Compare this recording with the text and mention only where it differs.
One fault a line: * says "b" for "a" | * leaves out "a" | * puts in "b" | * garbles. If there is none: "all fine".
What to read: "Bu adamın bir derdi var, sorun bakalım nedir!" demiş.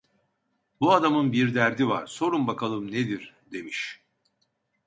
all fine